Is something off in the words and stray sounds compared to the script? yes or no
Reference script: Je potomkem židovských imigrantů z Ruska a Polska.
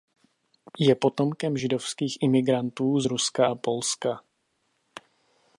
no